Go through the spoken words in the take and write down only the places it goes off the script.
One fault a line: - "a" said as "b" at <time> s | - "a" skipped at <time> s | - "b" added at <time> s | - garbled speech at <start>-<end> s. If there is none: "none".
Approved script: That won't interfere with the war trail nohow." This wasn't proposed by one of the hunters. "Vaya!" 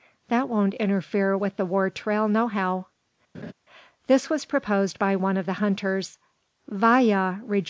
- "wasn't" said as "was" at 4.3 s